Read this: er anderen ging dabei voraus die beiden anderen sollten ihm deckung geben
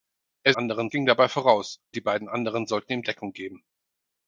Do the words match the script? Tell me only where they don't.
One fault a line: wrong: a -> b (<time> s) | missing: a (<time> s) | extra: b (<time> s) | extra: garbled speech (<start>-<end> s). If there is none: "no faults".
no faults